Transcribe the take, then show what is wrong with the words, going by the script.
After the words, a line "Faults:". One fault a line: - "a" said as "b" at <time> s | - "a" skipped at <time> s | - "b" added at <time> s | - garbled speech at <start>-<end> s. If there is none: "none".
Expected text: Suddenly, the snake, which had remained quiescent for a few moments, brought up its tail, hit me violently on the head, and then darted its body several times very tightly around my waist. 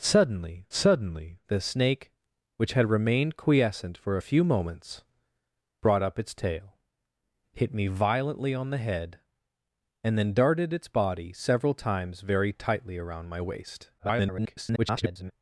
Suddenly suddenly, the snake, which had remained quiescent for a few moments, brought up its tail, hit me violently on the head, and then darted its body several times very tightly around my waist. [garbled]
Faults:
- "suddenly" added at 0.7 s
- garbled speech at 14.0-15.3 s